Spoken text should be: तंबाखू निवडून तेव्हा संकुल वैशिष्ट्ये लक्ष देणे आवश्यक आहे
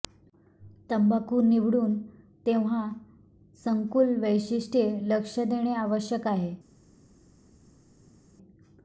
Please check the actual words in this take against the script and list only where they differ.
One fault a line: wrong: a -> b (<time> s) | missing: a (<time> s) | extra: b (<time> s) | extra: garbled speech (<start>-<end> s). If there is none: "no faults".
no faults